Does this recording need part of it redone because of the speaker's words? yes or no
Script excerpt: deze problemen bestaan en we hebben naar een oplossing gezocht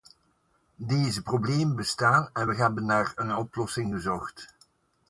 no